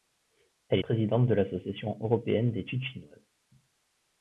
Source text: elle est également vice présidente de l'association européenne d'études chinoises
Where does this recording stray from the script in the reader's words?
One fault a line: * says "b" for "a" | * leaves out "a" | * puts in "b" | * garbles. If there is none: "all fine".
* leaves out "est également vice"